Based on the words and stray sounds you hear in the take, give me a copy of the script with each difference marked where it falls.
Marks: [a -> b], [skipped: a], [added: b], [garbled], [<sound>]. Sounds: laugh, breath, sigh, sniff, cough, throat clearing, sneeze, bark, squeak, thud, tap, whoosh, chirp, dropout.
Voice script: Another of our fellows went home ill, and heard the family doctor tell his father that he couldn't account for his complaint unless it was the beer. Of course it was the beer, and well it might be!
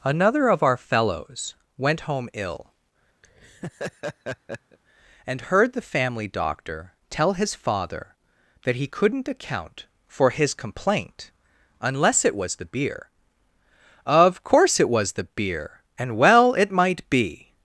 Another of our fellows went home ill, [laugh] and heard the family doctor tell his father that he couldn't account for his complaint unless it was the beer. Of course it was the beer, and well it might be!